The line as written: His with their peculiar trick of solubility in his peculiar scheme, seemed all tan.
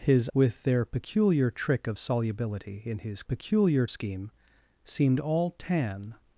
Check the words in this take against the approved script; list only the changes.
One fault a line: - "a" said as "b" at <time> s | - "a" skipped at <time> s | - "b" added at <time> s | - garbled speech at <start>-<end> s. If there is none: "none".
none